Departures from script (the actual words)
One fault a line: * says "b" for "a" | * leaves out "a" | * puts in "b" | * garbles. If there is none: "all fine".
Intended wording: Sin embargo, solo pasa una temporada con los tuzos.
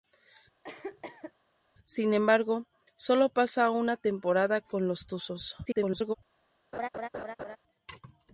* garbles